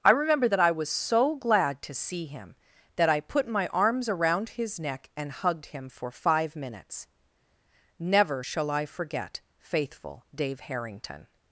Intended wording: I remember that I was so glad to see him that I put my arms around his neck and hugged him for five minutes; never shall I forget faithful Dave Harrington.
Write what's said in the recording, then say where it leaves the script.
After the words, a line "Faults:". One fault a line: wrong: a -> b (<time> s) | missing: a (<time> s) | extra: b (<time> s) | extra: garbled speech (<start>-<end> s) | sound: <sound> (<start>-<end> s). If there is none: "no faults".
I remember that I was so glad to see him that I put my arms around his neck and hugged him for five minutes; never shall I forget faithful Dave Harrington.
Faults:
no faults